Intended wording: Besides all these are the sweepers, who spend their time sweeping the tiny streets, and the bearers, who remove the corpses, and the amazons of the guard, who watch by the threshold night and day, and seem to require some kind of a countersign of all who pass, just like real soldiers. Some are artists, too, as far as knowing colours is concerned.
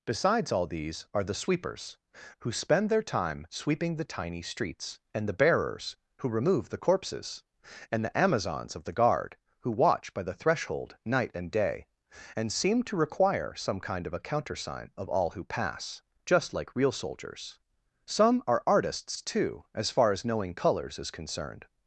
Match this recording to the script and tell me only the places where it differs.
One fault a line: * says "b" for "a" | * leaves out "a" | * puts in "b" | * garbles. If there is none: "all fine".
all fine